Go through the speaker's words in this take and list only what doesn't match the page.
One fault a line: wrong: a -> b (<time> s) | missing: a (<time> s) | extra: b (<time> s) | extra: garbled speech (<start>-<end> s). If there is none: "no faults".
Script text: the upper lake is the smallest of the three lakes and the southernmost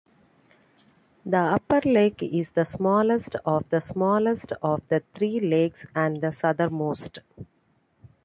extra: smallest of the (3.8 s)